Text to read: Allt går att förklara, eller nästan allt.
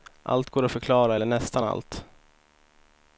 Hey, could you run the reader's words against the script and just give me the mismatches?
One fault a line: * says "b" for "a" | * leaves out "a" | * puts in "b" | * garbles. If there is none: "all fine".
all fine